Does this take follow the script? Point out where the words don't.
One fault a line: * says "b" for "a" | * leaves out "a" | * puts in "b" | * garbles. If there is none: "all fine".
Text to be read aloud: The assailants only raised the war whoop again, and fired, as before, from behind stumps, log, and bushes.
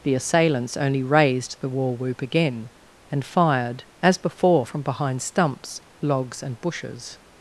* says "logs" for "log"